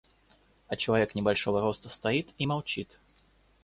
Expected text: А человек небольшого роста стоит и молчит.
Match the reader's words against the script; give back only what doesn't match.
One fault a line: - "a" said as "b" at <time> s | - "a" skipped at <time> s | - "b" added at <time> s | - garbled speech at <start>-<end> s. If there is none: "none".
none